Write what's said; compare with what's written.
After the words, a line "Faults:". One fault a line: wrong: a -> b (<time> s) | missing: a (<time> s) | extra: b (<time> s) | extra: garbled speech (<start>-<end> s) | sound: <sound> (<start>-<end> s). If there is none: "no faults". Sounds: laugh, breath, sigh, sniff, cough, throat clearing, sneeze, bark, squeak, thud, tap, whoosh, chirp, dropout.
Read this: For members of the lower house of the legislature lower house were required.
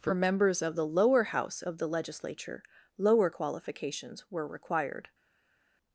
For members of the lower house of the legislature lower qualifications were required.
Faults:
wrong: house -> qualifications (3.3 s)